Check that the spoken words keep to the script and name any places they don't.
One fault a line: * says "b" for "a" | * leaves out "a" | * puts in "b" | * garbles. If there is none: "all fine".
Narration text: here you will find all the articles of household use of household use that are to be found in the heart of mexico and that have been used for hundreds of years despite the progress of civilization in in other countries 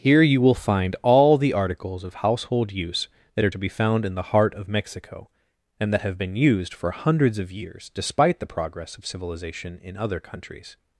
* leaves out "of household use"
* leaves out "in"